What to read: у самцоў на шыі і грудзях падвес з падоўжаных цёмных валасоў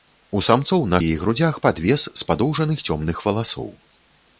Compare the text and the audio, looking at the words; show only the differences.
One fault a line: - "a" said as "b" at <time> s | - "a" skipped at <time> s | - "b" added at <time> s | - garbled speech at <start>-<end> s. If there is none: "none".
- "шыі" skipped at 1.0 s